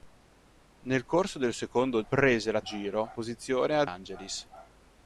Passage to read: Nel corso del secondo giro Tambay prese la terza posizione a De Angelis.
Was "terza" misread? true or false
true